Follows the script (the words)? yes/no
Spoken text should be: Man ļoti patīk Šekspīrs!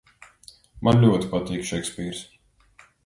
yes